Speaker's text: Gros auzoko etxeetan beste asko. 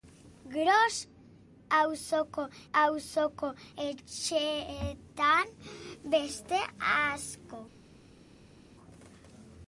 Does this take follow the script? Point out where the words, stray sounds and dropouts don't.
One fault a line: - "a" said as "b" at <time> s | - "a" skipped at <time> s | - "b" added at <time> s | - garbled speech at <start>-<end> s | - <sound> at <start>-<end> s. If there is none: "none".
- "auzoko" added at 2.7 s